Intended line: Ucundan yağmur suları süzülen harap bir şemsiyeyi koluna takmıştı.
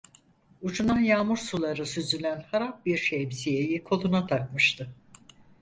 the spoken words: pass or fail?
pass